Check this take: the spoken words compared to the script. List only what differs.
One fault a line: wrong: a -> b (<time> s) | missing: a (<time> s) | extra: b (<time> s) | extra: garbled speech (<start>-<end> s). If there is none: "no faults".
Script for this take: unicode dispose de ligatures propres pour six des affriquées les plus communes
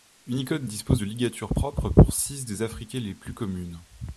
no faults